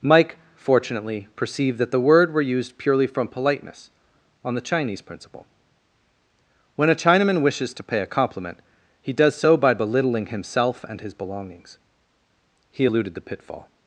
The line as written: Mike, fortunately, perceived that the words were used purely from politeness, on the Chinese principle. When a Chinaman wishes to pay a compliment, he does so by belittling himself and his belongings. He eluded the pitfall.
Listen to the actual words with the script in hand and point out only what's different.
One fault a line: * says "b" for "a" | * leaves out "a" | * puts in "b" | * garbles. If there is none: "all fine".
* says "word" for "words"